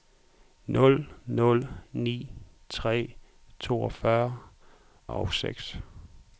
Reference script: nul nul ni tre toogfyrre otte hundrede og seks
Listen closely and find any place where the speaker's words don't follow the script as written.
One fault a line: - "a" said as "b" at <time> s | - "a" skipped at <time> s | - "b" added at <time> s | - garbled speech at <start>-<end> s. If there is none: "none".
- "otte hundrede" skipped at 4.4 s